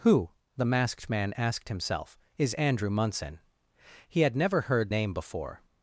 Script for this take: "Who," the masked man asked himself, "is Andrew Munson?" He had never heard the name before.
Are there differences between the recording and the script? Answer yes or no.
yes